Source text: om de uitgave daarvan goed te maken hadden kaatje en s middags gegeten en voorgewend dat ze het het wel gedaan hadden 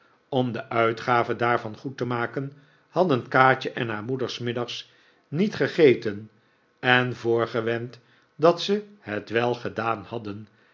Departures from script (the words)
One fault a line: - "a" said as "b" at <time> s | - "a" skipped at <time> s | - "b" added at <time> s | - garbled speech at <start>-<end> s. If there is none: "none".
- "haar moeder" added at 3.9 s
- "niet" added at 5.3 s
- "het" skipped at 9.3 s